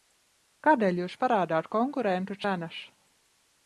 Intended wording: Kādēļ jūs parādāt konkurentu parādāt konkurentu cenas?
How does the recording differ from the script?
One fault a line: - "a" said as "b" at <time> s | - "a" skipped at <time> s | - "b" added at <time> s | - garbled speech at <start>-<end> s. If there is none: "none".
- "parādāt konkurentu" skipped at 2.4 s